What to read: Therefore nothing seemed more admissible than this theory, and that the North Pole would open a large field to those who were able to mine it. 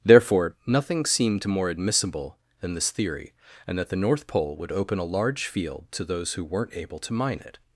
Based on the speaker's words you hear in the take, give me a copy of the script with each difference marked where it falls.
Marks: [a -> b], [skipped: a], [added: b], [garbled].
Therefore nothing seemed more admissible than this theory, and that the North Pole would open a large field to those who [were -> weren't] able to mine it.